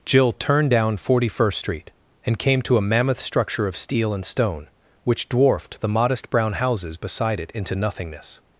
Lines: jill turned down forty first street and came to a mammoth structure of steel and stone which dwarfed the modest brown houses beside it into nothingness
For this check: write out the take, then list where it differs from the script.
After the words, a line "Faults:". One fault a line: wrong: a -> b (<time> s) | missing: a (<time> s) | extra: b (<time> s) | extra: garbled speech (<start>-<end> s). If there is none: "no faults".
jill turned down forty first street and came to a mammoth structure of steel and stone which dwarfed the modest brown houses beside it into nothingness
Faults:
no faults